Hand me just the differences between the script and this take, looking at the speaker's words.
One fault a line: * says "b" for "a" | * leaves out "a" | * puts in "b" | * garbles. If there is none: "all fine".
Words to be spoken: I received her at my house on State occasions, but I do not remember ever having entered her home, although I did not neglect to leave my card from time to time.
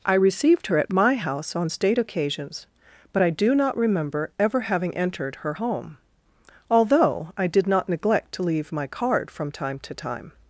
all fine